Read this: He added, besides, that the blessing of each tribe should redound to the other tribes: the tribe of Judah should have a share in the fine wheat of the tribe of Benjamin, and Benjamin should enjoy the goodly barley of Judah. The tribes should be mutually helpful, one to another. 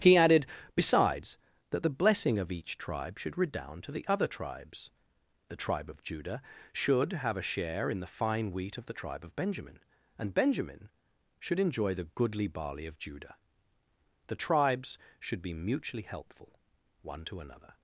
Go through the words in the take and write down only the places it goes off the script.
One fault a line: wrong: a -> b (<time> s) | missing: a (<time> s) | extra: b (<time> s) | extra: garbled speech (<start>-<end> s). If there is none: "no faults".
no faults